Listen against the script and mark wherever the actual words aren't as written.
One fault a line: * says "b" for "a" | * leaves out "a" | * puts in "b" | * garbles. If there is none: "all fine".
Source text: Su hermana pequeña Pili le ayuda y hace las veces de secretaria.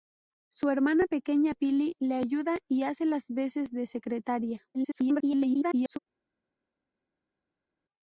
* garbles